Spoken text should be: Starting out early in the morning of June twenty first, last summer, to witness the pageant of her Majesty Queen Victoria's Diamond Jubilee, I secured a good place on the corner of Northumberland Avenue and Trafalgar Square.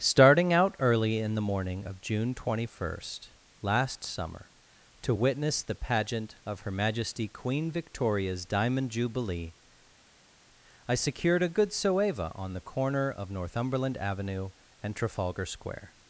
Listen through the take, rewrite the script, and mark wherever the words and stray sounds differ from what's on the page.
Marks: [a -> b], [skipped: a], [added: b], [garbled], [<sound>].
Starting out early in the morning of June twenty first, last summer, to witness the pageant of her Majesty Queen Victoria's Diamond Jubilee, I secured a good [place -> soeva] on the corner of Northumberland Avenue and Trafalgar Square.